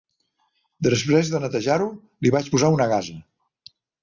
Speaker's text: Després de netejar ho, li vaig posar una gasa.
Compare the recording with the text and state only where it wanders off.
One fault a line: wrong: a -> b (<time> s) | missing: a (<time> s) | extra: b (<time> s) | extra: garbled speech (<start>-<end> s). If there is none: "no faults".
no faults